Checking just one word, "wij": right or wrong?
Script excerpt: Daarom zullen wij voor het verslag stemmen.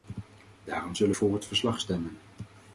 wrong